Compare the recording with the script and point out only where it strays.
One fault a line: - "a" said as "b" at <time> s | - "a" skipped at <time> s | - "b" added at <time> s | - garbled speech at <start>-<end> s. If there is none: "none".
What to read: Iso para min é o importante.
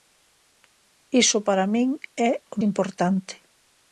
none